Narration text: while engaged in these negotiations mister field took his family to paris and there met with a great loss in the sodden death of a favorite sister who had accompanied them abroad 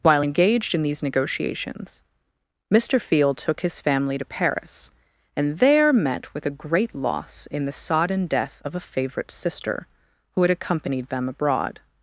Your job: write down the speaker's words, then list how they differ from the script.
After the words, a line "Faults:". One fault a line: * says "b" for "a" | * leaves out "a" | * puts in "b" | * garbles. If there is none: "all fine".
while engaged in these negotiations mister field took his family to paris and there met with a great loss in the sodden death of a favorite sister who had accompanied them abroad
Faults:
all fine